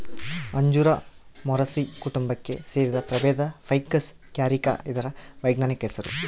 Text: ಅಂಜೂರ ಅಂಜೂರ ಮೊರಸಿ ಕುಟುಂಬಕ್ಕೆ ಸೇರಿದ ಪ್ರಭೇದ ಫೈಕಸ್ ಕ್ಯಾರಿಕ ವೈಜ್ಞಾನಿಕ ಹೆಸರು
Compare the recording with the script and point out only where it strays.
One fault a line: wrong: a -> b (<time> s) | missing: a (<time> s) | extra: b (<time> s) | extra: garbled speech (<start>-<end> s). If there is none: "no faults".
missing: ಅಂಜೂರ (0.9 s)
extra: ಇದರ (4.9 s)